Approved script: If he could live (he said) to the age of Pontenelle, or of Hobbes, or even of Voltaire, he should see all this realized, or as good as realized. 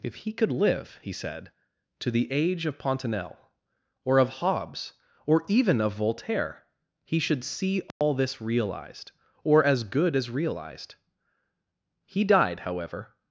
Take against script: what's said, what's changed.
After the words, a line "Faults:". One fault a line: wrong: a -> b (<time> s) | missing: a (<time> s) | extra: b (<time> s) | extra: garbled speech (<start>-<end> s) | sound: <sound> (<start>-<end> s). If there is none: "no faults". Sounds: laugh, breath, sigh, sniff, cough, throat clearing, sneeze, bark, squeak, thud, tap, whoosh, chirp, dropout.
If he could live (he said) to the age of Pontenelle, or of Hobbes, or even of Voltaire, he should see all this realized, or as good as realized. He died, however
Faults:
sound: dropout (7.9-8.0 s)
extra: He died however (12.0 s)